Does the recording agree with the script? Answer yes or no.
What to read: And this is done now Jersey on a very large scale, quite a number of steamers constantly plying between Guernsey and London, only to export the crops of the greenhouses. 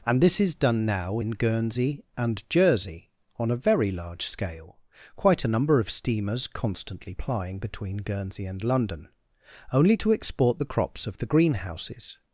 no